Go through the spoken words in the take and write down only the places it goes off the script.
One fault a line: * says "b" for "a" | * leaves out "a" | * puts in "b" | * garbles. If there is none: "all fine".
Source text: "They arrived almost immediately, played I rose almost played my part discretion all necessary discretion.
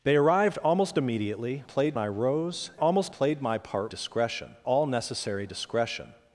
all fine